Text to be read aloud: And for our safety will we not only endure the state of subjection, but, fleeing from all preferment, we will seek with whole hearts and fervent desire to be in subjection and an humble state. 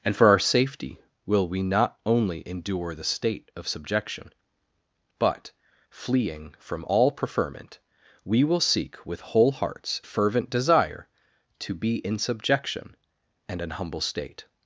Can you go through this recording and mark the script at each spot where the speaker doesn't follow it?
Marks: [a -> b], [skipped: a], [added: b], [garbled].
And for our safety will we not only endure the state of subjection, but, fleeing from all preferment, we will seek with whole hearts [skipped: and] fervent desire to be in subjection and an humble state.